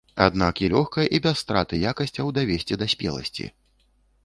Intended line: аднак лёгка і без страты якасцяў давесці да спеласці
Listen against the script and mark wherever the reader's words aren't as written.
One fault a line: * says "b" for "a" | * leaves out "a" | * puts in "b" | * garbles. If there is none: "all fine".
all fine